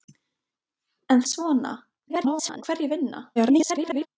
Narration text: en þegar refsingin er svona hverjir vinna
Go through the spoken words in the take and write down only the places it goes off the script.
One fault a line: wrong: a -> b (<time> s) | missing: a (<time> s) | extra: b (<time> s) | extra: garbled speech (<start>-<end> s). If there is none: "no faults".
missing: þegar refsingin (1.2 s)
extra: garbled speech (2.1-2.6 s)
extra: garbled speech (3.4-4.1 s)